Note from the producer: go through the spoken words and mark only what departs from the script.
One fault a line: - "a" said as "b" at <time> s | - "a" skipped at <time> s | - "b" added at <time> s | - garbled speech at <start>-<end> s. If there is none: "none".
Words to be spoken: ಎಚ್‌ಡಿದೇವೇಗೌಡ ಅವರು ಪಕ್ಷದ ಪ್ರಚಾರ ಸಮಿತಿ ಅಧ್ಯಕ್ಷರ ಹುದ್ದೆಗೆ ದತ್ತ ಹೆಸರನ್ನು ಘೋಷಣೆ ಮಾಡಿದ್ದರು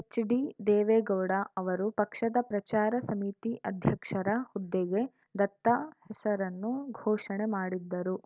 none